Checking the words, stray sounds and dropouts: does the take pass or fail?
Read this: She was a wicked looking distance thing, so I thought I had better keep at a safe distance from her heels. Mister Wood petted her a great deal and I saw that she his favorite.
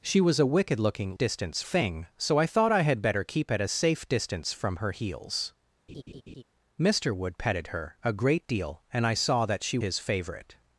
fail